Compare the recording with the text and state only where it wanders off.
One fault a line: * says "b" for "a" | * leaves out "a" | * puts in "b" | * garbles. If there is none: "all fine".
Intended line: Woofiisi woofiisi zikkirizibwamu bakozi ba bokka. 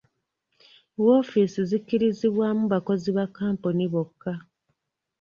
* leaves out "woofiisi"
* puts in "kkampuni"